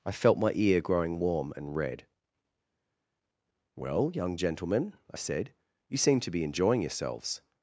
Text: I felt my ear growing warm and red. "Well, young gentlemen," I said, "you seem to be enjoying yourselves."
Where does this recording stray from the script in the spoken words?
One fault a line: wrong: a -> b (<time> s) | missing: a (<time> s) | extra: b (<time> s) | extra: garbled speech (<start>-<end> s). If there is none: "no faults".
no faults